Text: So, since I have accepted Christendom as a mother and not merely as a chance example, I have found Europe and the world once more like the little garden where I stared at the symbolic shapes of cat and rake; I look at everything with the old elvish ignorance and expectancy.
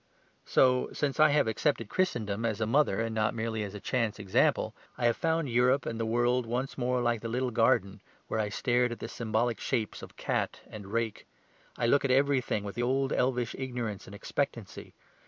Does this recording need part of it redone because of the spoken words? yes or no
no